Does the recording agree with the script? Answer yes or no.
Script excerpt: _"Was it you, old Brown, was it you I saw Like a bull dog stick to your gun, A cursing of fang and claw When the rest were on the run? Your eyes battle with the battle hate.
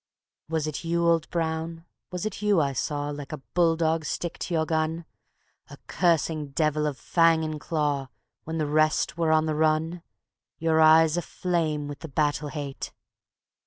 no